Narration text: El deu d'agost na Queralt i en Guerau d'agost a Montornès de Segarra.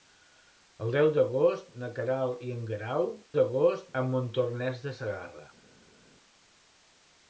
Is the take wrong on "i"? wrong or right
right